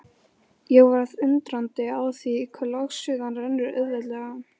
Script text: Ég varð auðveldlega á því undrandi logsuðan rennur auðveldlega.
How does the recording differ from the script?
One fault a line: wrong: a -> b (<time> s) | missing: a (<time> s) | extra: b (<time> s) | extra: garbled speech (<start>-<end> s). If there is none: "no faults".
wrong: auðveldlega -> undrandi (1.3 s)
wrong: undrandi -> hve (2.6 s)